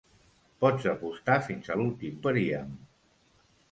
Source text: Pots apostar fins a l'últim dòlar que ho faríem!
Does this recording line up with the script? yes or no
no